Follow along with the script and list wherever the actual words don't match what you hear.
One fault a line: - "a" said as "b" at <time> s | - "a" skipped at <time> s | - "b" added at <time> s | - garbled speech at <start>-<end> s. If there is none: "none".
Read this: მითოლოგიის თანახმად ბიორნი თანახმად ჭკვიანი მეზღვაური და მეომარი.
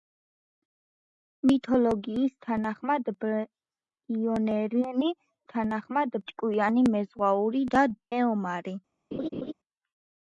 none